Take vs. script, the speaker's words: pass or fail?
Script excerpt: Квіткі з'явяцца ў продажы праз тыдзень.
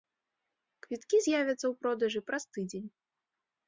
pass